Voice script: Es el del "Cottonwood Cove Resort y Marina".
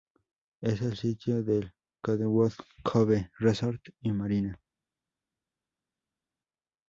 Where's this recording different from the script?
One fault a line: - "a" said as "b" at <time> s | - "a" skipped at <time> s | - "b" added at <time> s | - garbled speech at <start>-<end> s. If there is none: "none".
- "sitio" added at 1.0 s